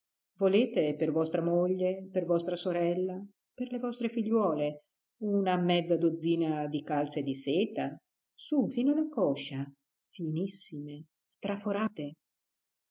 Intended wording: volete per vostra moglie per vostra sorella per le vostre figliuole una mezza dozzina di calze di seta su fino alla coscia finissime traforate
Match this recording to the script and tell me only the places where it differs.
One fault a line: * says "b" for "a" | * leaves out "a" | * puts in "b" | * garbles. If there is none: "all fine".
all fine